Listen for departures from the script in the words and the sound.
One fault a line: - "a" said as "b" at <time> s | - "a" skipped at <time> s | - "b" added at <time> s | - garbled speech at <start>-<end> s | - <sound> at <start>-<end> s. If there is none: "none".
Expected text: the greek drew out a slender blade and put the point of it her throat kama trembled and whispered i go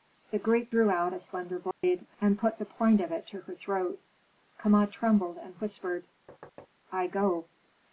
- dropout at 1.7-1.8 s
- "to" added at 3.3 s
- thud at 6.3-6.7 s